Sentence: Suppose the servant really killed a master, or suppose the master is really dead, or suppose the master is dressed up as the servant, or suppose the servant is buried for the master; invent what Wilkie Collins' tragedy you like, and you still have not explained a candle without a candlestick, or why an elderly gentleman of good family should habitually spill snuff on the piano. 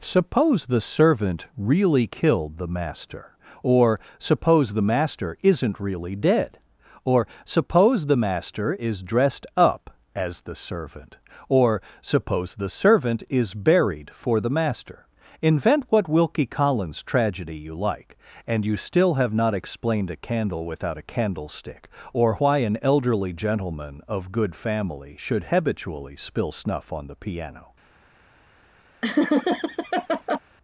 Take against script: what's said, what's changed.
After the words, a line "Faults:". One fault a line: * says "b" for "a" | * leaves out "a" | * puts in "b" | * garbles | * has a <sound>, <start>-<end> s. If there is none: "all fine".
Suppose the servant really killed the master, or suppose the master isn't really dead, or suppose the master is dressed up as the servant, or suppose the servant is buried for the master; invent what Wilkie Collins' tragedy you like, and you still have not explained a candle without a candlestick, or why an elderly gentleman of good family should habitually spill snuff on the piano.
Faults:
* says "the" for "a"
* says "isn't" for "is"
* has a laugh, 29.0-30.4 s